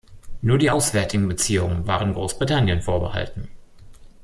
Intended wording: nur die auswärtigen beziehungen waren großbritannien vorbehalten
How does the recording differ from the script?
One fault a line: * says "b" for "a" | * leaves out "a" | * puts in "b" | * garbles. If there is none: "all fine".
all fine